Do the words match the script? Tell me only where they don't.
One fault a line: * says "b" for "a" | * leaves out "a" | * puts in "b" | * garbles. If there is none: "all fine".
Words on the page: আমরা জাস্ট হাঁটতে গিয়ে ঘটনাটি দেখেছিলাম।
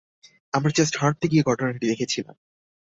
all fine